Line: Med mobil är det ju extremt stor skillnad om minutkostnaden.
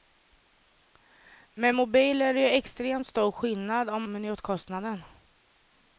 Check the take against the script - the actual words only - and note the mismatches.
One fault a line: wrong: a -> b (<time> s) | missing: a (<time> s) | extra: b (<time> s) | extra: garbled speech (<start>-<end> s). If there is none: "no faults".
no faults